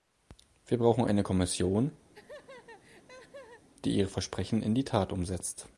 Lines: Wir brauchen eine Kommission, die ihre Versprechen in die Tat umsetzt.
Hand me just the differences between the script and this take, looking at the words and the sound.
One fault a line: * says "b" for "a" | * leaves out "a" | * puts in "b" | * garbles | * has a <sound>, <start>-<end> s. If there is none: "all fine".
* has a laugh, 2.1-3.7 s